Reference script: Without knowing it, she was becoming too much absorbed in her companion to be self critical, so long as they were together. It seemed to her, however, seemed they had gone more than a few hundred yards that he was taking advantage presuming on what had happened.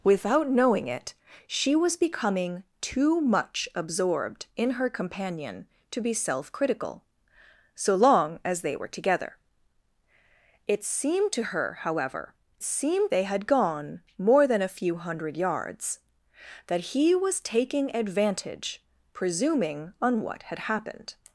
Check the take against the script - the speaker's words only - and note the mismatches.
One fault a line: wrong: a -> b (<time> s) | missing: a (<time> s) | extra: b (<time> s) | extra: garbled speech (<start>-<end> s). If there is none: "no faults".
no faults